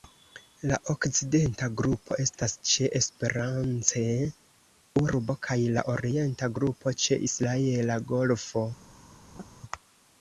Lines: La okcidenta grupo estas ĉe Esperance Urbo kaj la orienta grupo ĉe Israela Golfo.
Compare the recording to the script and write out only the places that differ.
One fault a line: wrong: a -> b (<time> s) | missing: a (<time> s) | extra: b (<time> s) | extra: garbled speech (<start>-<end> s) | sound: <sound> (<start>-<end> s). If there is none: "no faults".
sound: laugh (9.3-9.5 s)